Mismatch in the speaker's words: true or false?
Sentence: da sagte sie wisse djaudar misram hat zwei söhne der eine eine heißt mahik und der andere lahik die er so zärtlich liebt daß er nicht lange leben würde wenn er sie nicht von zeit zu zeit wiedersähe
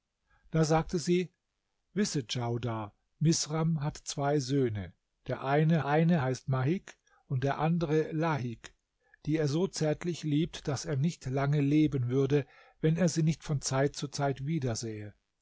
false